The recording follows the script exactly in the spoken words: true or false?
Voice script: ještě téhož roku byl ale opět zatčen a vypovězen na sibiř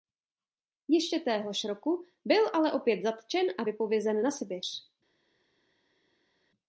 true